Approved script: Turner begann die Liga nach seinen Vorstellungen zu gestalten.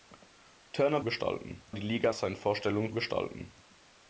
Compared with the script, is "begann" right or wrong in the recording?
wrong